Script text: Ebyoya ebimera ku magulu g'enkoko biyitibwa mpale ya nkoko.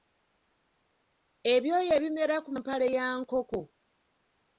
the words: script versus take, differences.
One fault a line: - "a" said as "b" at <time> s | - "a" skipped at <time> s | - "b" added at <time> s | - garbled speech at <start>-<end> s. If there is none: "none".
- "magulu g'enkoko biyitibwa" skipped at 2.5 s